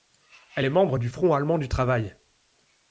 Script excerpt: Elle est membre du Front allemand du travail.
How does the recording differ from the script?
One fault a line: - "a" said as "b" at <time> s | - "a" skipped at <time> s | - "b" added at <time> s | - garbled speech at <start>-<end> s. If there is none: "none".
none